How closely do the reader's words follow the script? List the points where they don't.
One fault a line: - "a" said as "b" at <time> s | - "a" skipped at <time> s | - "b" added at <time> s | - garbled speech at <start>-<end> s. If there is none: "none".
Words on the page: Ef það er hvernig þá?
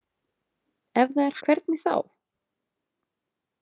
none